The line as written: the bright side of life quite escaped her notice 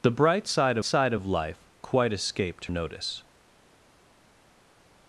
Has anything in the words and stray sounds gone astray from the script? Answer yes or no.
yes